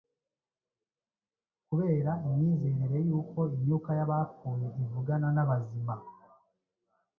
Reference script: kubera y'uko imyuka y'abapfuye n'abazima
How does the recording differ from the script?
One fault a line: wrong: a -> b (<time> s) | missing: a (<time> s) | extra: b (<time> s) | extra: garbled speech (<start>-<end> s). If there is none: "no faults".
extra: imyizerere (2.3 s)
extra: ivugana (4.8 s)